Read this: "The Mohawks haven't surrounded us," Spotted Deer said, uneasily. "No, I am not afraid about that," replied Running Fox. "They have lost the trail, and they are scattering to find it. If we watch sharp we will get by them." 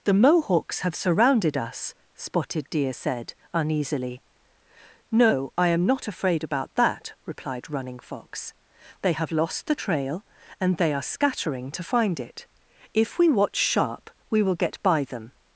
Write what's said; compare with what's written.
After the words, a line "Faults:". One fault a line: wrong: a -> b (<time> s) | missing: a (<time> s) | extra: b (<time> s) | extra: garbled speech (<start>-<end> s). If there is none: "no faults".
"The Mohawks have surrounded us," Spotted Deer said, uneasily. "No, I am not afraid about that," replied Running Fox. "They have lost the trail, and they are scattering to find it. If we watch sharp we will get by them."
Faults:
wrong: haven't -> have (0.8 s)